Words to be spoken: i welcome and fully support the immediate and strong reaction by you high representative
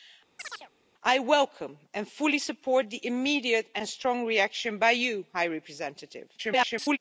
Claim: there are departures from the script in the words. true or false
true